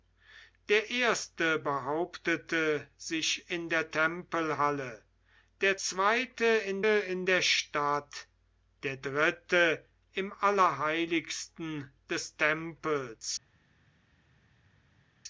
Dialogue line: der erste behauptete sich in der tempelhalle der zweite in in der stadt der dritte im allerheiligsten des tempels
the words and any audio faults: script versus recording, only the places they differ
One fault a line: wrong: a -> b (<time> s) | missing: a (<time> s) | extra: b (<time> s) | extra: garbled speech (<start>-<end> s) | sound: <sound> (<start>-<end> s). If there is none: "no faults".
no faults